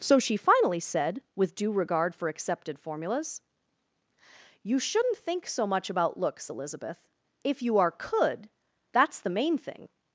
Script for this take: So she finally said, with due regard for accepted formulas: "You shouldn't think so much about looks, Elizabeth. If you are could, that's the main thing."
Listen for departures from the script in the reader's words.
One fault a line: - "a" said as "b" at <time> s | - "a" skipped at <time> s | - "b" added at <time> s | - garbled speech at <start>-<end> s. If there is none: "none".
none